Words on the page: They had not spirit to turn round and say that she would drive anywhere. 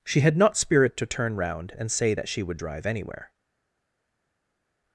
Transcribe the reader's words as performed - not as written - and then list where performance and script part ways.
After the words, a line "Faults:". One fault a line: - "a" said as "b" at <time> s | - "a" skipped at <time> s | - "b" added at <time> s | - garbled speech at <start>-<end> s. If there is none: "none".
She had not spirit to turn round and say that she would drive anywhere.
Faults:
- "They" said as "She" at 0.0 s